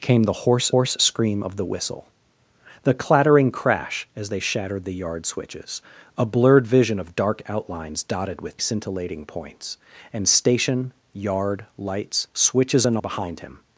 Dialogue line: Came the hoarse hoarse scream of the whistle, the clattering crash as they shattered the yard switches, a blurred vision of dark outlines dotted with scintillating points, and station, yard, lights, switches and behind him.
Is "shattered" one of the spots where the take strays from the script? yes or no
no